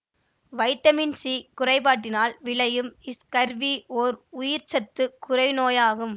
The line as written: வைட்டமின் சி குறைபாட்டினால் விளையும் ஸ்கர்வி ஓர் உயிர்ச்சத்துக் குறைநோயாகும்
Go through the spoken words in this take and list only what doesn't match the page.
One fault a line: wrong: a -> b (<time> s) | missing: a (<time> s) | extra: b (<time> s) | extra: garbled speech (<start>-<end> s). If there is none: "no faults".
no faults